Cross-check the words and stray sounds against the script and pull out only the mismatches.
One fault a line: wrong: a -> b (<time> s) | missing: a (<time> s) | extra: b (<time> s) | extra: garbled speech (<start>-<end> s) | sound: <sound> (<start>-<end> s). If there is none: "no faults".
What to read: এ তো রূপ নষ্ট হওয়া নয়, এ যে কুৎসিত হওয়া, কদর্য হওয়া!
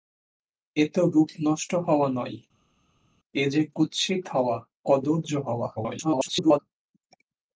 extra: garbled speech (5.8-6.6 s)